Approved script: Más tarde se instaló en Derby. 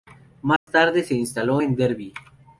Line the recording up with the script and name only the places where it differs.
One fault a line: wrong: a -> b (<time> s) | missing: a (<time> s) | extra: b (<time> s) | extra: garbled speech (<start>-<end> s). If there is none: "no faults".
no faults